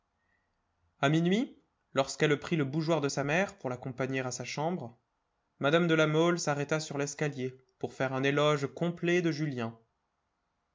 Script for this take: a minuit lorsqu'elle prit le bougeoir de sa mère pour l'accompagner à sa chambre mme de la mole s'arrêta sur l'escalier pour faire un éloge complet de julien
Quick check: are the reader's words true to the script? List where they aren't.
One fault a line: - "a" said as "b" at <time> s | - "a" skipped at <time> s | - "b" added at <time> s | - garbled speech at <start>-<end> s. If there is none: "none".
none